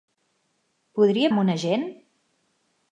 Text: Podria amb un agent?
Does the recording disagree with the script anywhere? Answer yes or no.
no